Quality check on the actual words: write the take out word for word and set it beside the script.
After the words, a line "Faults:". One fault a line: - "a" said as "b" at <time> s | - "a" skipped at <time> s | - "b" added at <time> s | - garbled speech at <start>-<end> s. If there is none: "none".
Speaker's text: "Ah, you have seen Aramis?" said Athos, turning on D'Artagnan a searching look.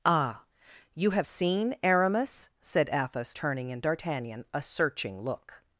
"Ah, you have seen Aramis?" said Athos, turning in D'Artagnan a searching look.
Faults:
- "on" said as "in" at 3.7 s